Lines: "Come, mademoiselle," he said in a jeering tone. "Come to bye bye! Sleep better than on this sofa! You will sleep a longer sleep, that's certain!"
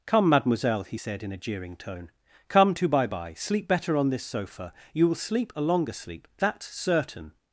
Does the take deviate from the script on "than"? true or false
true